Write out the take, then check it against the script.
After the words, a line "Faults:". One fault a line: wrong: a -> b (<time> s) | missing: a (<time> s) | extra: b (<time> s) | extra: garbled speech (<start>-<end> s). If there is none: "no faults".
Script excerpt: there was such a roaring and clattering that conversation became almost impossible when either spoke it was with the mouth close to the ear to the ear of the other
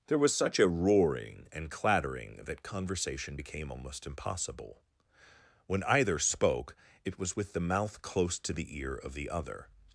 there was such a roaring and clattering that conversation became almost impossible when either spoke it was with the mouth close to the ear of the other
Faults:
missing: to the ear (8.9 s)